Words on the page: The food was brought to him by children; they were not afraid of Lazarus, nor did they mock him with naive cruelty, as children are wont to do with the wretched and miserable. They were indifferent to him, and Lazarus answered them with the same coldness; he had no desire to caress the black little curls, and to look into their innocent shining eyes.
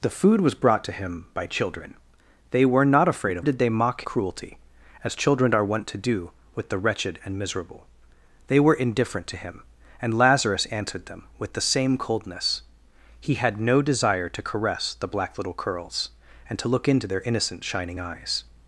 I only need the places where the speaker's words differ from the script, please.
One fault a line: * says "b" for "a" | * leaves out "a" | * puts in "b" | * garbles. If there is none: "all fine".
* leaves out "Lazarus nor"
* leaves out "him with naive"